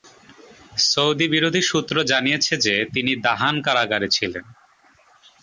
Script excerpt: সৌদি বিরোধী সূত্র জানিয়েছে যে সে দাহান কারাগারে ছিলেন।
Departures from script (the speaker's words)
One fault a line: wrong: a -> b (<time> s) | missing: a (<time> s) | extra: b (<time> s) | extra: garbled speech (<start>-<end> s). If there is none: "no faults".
wrong: সে -> তিনি (2.9 s)